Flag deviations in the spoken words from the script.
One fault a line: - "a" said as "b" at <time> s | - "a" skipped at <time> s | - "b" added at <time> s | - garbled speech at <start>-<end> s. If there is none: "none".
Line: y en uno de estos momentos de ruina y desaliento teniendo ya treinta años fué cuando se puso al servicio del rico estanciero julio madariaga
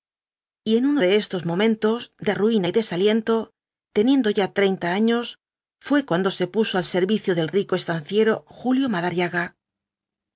none